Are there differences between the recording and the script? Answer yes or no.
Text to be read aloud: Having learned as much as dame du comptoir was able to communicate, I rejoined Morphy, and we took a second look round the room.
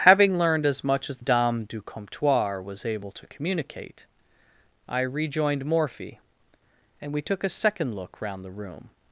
no